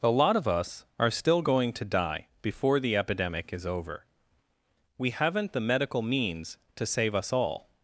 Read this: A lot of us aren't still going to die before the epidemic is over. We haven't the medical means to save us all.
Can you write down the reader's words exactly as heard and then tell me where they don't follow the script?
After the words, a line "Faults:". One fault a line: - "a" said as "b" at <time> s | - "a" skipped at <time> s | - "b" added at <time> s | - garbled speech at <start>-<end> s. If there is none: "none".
A lot of us are still going to die before the epidemic is over. We haven't the medical means to save us all.
Faults:
- "aren't" said as "are" at 1.0 s